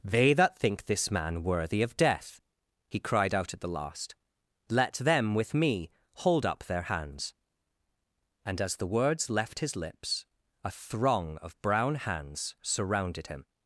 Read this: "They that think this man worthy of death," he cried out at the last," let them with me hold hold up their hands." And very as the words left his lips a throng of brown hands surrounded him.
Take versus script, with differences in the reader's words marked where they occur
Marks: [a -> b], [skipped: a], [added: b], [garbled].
"They that think this man worthy of death," he cried out at the last," let them with me hold [skipped: hold] up their hands." And [skipped: very] as the words left his lips a throng of brown hands surrounded him.